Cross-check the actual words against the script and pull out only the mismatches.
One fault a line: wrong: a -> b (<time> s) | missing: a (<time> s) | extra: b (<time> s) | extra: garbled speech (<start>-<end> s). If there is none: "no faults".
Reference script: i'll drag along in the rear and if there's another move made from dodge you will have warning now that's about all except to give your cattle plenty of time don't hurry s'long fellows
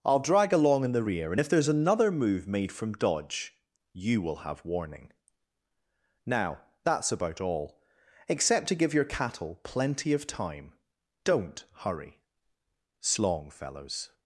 no faults